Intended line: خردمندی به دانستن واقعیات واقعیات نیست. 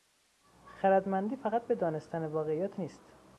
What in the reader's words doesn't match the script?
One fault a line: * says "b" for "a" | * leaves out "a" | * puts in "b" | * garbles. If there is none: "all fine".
* puts in "فقط"
* leaves out "واقعیات"